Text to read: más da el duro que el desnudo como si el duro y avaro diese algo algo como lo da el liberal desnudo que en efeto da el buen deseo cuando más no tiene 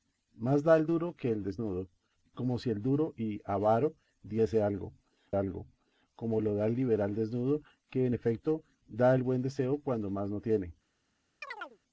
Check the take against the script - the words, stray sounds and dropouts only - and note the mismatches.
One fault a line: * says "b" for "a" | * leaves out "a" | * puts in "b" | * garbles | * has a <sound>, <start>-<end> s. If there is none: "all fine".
* has a chirp, 11.4-11.8 s